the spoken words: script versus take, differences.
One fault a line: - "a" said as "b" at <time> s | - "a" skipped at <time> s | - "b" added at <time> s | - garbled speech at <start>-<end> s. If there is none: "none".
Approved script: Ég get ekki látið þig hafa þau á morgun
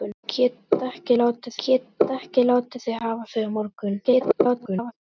- "get ekki látið" added at 1.6 s
- garbled speech at 4.0-4.9 s